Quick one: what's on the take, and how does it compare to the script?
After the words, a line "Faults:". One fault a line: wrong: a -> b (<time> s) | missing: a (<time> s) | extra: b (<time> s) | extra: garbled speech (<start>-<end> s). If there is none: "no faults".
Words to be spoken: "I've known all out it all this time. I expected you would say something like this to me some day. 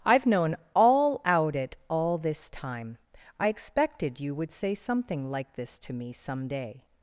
"I've known all out it all this time. I expected you would say something like this to me some day.
Faults:
no faults